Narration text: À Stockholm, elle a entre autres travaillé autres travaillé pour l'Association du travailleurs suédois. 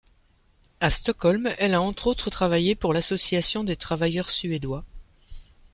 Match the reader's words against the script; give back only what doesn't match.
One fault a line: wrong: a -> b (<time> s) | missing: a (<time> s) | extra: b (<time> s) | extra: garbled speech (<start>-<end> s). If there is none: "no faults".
missing: autres travaillé (2.8 s)
wrong: du -> des (3.6 s)